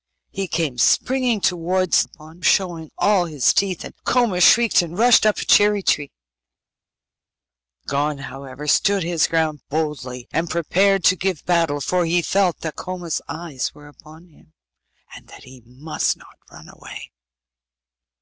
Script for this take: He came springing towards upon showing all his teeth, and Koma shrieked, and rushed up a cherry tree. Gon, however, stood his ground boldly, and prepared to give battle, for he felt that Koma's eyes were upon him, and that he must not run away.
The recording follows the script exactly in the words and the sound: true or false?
true